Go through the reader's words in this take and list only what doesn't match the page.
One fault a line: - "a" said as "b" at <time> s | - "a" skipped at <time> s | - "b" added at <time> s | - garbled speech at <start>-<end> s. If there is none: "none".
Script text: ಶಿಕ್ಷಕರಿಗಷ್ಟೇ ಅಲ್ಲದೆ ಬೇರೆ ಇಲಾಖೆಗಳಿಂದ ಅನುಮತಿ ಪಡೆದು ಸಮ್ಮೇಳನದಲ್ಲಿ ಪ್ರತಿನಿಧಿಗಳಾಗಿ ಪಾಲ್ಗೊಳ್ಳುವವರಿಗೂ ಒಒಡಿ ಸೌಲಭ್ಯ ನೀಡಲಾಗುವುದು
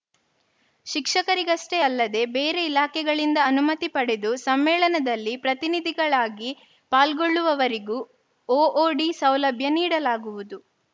none